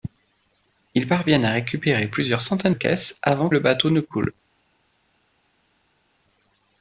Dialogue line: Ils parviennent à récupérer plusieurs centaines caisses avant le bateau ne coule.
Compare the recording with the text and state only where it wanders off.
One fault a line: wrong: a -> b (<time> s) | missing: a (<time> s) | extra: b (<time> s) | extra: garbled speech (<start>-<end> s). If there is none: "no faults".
no faults